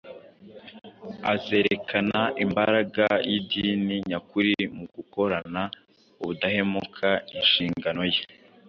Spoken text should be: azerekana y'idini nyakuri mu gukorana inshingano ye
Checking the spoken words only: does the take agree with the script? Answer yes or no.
no